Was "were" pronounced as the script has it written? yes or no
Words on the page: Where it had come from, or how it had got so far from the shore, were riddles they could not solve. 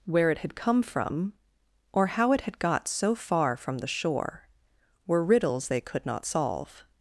yes